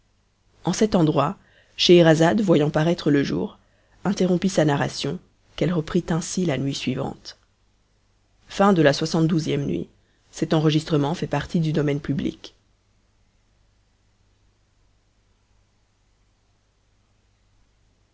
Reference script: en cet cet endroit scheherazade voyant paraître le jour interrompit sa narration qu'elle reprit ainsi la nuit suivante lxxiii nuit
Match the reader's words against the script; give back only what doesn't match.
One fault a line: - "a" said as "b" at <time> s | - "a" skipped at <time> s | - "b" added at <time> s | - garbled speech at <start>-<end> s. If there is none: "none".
- "cet" skipped at 0.9 s